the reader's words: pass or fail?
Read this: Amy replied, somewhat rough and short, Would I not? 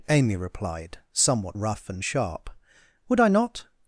fail